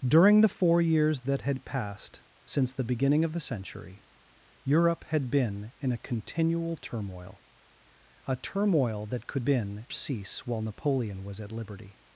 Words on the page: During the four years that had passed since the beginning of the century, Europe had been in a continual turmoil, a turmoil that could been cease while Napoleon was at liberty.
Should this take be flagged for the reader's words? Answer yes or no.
no